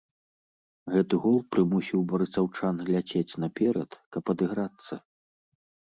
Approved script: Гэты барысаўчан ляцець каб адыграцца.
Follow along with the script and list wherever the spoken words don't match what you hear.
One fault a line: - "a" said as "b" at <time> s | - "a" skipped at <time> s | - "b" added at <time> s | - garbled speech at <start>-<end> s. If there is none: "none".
- "гол прымусіў" added at 1.2 s
- "наперад" added at 3.5 s